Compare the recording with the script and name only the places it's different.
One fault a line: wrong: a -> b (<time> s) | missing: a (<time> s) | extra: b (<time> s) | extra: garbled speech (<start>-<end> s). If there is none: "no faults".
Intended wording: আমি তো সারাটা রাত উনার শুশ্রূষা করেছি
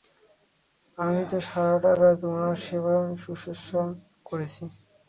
extra: সেবা (2.6 s)